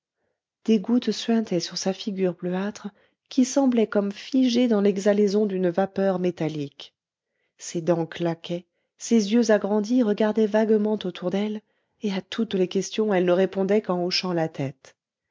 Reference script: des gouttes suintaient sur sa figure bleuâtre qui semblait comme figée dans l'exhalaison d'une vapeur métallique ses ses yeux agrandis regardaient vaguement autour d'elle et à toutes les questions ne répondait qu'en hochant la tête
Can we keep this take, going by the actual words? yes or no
no